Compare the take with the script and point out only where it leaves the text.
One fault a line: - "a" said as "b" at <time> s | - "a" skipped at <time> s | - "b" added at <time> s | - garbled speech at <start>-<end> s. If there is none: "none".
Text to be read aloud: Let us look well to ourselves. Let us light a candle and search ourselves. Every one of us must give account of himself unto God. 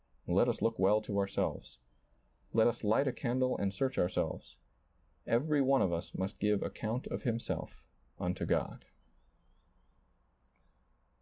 none